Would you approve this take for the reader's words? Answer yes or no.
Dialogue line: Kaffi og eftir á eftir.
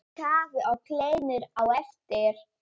no